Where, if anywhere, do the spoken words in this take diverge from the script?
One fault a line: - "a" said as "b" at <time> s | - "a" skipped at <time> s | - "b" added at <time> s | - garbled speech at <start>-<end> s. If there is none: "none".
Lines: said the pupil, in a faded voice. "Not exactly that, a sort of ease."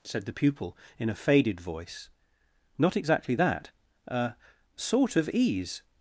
none